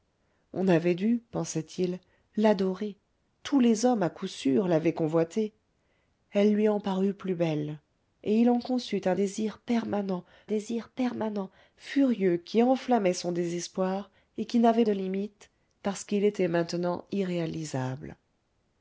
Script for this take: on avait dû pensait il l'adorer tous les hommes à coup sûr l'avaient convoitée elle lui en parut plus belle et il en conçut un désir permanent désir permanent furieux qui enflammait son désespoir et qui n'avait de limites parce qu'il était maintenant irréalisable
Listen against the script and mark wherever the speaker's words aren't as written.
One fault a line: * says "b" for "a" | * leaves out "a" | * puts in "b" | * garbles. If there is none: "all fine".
all fine